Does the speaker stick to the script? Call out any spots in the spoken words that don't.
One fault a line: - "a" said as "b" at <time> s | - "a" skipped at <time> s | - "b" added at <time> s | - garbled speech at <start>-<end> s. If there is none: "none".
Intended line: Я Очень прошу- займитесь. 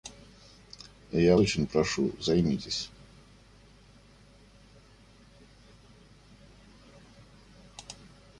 none